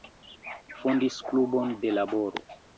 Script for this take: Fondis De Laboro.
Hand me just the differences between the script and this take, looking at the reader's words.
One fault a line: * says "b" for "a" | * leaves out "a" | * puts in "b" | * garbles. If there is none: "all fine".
* puts in "Klubon"